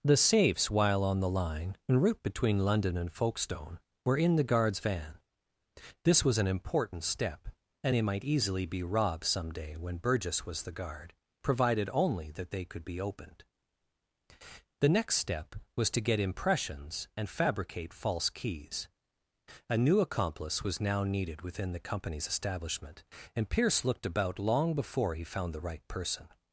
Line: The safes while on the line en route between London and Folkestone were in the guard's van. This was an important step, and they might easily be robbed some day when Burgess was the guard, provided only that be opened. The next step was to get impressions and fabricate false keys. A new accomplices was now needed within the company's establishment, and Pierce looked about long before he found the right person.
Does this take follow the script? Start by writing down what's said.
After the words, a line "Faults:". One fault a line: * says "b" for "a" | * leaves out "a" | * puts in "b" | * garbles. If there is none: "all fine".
The safes while on the line en route between London and Folkestone were in the guard's van. This was an important step, and they might easily be robbed some day when Burgess was the guard, provided only that they could be opened. The next step was to get impressions and fabricate false keys. A new accomplice was now needed within the company's establishment, and Pierce looked about long before he found the right person.
Faults:
* puts in "they could"
* says "accomplice" for "accomplices"